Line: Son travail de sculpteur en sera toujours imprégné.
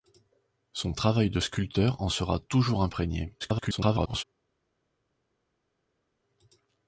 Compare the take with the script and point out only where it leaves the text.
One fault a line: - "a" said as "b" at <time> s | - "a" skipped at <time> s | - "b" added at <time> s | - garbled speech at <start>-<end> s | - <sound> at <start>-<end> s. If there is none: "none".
- garbled speech at 3.4-4.2 s